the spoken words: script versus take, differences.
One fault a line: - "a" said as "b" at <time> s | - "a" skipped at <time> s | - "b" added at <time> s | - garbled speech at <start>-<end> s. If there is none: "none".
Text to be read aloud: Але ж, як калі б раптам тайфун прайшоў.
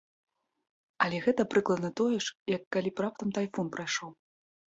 - "гэта прыкладна тое" added at 1.2 s